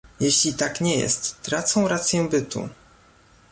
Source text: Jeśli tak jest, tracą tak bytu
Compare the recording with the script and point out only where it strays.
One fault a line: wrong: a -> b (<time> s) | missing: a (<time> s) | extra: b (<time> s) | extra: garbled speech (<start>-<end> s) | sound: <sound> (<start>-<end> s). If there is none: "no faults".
extra: nie (0.8 s)
wrong: tak -> rację (1.9 s)